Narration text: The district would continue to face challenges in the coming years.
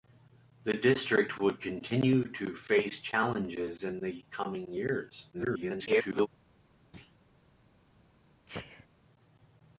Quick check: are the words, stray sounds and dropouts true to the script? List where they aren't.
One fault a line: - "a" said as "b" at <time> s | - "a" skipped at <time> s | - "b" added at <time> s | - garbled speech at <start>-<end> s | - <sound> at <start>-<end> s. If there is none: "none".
- garbled speech at 5.3-6.3 s
- thud at 6.9-7.2 s
- sneeze at 8.5-8.9 s